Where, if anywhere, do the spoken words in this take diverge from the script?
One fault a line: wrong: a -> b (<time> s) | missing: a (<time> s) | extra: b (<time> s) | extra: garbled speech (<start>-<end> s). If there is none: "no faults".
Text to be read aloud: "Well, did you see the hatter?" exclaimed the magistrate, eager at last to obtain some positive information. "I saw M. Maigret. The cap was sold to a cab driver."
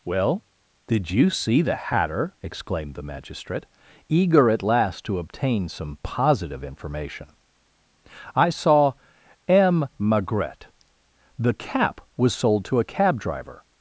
no faults